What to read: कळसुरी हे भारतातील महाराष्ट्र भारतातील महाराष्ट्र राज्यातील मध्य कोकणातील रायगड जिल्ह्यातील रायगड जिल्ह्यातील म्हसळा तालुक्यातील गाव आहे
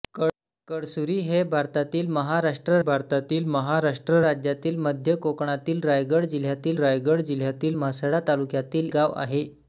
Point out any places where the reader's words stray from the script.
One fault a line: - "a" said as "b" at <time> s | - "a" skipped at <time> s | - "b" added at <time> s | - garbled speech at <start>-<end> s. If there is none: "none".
none